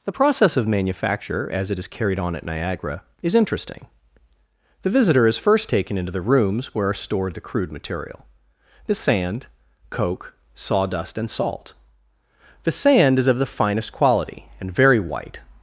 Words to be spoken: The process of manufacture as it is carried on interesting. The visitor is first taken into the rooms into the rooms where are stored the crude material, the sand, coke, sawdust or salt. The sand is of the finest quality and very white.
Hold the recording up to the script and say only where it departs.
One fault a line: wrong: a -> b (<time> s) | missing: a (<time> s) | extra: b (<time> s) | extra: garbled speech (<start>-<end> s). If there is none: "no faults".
extra: at Niagara is (2.3 s)
missing: into the rooms (6.7 s)
wrong: or -> and (11.2 s)